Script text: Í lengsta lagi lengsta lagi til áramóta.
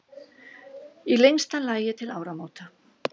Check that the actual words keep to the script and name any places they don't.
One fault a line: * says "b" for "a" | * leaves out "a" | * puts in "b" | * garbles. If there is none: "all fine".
* leaves out "lengsta lagi"